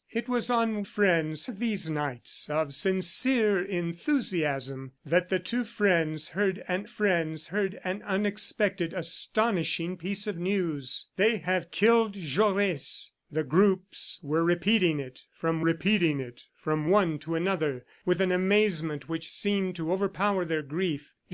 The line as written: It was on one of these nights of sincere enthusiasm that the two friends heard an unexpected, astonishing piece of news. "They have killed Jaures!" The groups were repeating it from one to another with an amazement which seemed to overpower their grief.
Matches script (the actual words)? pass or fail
fail